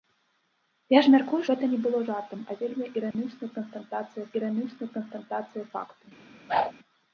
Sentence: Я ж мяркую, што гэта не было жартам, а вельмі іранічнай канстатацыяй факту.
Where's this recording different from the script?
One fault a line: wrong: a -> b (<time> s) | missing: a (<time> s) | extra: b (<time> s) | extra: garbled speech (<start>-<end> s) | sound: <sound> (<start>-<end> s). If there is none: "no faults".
missing: што (1.4 s)
sound: dropout (3.1-3.1 s)
extra: іранічнай канстатацыяй (4.4 s)
sound: whoosh (6.5-6.7 s)